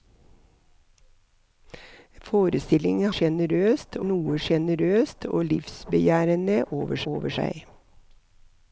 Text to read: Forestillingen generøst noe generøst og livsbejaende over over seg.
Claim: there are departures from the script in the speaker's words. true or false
false